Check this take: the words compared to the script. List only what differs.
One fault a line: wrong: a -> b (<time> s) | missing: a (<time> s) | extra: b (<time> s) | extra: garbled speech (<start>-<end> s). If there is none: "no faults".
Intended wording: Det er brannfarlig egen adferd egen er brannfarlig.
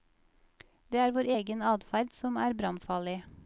wrong: brannfarlig -> vår (1.2 s)
wrong: egen -> som (2.2 s)